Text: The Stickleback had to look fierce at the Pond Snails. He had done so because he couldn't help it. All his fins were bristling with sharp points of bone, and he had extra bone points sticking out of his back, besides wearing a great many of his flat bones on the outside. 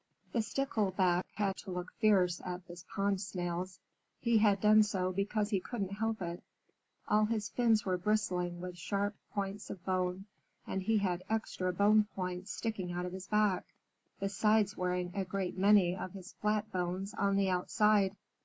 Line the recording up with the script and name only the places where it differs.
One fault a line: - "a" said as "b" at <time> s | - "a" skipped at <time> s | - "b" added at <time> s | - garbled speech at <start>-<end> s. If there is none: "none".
none